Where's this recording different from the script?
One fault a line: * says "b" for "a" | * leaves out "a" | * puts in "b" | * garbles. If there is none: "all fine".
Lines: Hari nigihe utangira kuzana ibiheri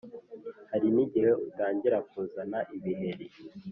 all fine